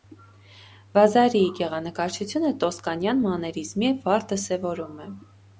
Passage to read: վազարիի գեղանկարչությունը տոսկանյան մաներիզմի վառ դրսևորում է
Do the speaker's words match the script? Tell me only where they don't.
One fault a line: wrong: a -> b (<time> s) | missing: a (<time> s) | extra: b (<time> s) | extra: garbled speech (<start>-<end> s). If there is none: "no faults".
no faults